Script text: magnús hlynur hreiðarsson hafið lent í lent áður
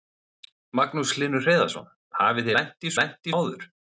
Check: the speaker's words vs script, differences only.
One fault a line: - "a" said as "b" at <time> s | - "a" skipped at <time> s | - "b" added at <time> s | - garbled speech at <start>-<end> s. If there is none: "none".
none